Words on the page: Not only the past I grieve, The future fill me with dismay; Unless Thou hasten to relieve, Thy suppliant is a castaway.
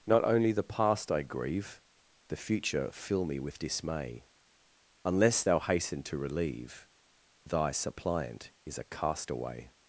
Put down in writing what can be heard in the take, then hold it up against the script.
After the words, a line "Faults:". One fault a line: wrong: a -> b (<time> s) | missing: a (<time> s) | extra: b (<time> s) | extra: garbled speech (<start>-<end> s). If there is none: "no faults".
Not only the past I grieve, The future fill me with dismay; Unless Thou hasten to relieve, Thy suppliant is a castaway.
Faults:
no faults